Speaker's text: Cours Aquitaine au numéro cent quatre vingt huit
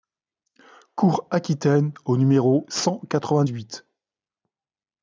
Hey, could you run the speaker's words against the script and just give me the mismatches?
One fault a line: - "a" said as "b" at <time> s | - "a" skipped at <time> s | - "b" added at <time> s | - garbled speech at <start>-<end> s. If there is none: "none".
none